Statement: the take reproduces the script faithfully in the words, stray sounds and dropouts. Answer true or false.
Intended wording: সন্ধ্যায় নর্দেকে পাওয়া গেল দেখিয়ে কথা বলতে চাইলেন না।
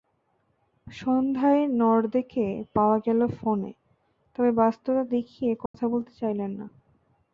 false